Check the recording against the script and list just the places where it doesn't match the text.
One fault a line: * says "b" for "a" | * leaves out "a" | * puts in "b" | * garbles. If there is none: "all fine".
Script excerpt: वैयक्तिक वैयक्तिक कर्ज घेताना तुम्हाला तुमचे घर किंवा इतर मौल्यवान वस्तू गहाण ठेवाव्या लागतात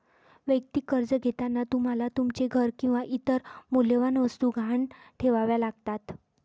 * leaves out "वैयक्तिक"